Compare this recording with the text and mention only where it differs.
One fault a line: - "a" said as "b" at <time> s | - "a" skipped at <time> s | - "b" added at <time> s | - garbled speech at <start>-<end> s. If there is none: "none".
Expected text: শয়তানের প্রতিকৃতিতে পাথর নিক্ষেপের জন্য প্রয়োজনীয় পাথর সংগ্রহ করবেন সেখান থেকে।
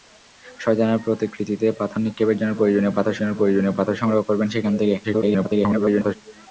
- "জন্য প্রয়োজনীয় পাথর" added at 3.2 s
- garbled speech at 5.0-6.2 s